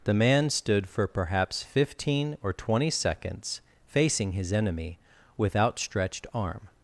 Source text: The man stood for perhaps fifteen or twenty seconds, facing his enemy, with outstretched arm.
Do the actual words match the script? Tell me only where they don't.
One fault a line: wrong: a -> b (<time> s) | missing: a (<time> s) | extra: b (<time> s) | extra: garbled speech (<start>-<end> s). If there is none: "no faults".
no faults